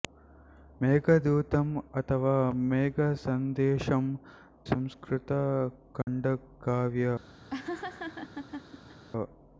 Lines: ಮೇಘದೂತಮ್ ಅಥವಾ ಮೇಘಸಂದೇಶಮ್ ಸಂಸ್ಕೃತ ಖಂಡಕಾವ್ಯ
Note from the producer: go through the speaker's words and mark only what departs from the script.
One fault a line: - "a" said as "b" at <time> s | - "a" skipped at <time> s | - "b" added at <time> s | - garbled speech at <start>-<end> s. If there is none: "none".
none